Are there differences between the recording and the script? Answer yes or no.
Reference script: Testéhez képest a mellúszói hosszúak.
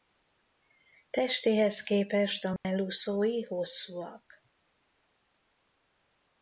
no